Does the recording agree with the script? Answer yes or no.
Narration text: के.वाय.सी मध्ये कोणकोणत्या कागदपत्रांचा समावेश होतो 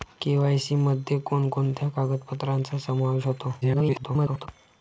no